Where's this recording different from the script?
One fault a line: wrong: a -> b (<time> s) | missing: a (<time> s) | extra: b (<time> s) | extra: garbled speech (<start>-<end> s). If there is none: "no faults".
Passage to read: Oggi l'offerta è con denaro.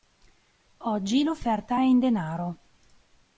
wrong: con -> in (1.8 s)